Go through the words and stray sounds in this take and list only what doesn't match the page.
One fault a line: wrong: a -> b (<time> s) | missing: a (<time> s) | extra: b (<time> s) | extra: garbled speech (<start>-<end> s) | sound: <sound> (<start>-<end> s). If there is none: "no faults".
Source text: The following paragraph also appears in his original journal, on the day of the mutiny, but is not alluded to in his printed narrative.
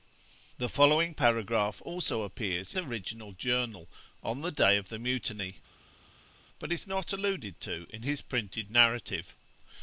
missing: in his (2.7 s)